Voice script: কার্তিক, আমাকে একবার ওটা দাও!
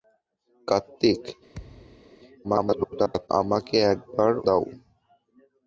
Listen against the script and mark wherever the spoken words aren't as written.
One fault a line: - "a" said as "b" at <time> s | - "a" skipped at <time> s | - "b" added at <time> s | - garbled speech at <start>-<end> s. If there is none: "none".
- garbled speech at 2.4-3.3 s
- "ওটা" skipped at 4.3 s